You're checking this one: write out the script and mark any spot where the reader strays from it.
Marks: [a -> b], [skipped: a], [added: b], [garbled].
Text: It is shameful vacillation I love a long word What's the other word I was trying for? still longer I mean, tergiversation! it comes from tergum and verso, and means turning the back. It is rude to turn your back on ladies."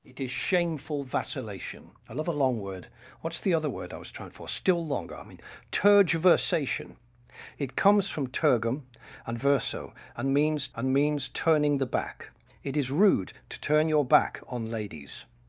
It is shameful vacillation I love a long word What's the other word I was trying for? still longer I mean, tergiversation! it comes from tergum and verso, and means [added: and means] turning the back. It is rude to turn your back on ladies."